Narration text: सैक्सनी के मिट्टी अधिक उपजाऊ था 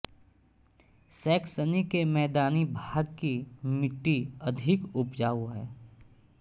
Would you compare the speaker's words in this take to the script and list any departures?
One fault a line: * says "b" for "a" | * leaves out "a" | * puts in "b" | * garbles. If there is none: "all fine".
* puts in "मैदानी भाग की"
* says "है" for "था"